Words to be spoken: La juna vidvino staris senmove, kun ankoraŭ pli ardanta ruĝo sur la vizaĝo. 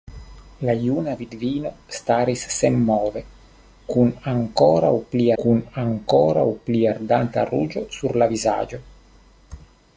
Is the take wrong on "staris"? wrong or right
right